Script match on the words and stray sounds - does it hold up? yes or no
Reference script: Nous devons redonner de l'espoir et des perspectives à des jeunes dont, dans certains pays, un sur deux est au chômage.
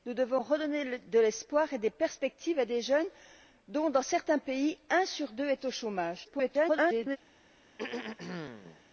no